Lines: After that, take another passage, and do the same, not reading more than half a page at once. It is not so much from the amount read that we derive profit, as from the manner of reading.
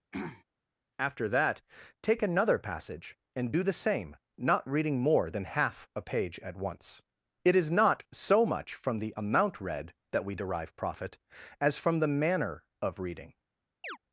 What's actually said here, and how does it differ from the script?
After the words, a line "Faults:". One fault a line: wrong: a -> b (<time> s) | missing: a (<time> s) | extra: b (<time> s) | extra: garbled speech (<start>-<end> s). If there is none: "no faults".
After that, take another passage, and do the same, not reading more than half a page at once. It is not so much from the amount read that we derive profit, as from the manner of reading.
Faults:
no faults